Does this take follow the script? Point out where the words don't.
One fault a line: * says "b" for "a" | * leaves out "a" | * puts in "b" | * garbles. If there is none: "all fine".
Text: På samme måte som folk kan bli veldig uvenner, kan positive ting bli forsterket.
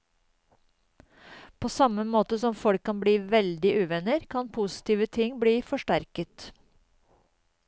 all fine